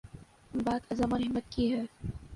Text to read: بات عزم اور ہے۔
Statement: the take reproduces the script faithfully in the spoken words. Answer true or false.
false